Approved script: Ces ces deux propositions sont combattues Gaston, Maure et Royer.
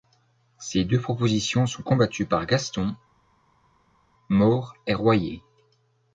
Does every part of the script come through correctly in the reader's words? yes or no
no